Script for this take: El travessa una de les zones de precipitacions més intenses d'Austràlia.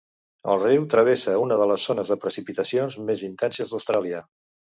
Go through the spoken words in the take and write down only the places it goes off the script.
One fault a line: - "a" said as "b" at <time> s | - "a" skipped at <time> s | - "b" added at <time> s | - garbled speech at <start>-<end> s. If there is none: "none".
- "riu" added at 0.6 s